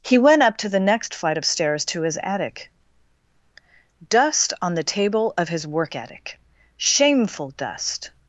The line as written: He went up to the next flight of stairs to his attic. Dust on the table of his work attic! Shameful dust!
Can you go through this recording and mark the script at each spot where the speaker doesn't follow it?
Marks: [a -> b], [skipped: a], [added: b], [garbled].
He went up to the next flight of stairs to his attic. Dust on the table of his work attic! Shameful dust!